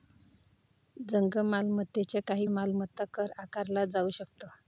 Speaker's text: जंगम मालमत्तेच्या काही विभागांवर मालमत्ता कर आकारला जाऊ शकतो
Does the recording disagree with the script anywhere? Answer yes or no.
yes